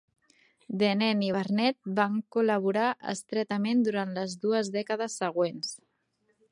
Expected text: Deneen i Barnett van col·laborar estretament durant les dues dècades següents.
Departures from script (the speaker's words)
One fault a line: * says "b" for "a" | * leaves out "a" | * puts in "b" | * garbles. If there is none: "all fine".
all fine